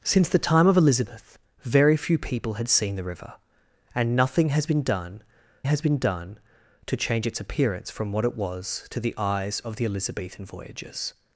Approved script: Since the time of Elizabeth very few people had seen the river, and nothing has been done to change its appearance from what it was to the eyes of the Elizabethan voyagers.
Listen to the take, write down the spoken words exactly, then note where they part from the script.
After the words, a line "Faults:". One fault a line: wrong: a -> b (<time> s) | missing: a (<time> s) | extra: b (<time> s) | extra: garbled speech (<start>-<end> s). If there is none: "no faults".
Since the time of Elizabeth very few people had seen the river, and nothing has been done has been done to change its appearance from what it was to the eyes of the Elizabethan voyagers.
Faults:
extra: has been done (5.6 s)